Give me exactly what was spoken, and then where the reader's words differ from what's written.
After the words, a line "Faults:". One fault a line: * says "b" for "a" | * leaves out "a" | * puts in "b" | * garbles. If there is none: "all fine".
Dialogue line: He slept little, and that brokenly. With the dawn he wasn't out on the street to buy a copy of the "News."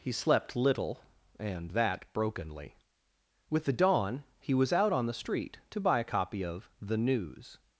He slept little, and that brokenly. With the dawn he was out on the street to buy a copy of the "News."
Faults:
* says "was" for "wasn't"